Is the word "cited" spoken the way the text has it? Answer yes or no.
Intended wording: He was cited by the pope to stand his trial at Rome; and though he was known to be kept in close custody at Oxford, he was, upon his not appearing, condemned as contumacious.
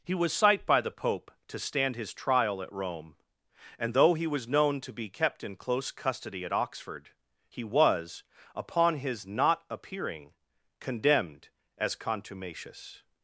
no